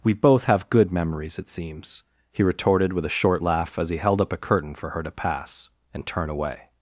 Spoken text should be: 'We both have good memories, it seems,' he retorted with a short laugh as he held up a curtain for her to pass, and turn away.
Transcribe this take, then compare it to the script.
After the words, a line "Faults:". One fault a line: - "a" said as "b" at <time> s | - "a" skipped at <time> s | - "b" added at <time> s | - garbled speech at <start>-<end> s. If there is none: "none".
'We both have good memories, it seems,' he retorted with a short laugh as he held up a curtain for her to pass, and turn away.
Faults:
none